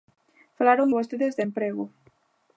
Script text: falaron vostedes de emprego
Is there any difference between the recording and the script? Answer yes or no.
no